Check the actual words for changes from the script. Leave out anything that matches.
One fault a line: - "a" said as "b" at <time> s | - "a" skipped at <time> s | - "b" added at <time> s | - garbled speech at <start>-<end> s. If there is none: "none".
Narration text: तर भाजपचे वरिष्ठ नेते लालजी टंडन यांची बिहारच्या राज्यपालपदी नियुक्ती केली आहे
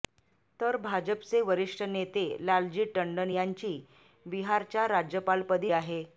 - "नियुक्ती केली" skipped at 5.7 s